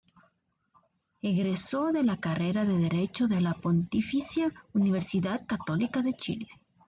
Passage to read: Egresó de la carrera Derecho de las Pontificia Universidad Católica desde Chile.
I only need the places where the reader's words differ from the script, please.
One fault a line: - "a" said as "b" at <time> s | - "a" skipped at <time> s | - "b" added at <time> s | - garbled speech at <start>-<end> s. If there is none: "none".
- "de" added at 2.6 s
- "las" said as "la" at 3.4 s
- "desde" said as "de" at 6.0 s